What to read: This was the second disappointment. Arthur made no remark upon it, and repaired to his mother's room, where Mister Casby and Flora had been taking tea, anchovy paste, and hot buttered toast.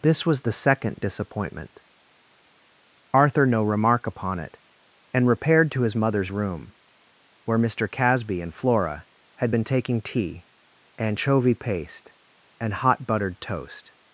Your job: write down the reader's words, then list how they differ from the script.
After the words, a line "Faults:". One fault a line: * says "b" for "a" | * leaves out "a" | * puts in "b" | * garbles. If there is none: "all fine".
This was the second disappointment. Arthur no remark upon it, and repaired to his mother's room, where Mister Casby and Flora had been taking tea, anchovy paste, and hot buttered toast.
Faults:
* leaves out "made"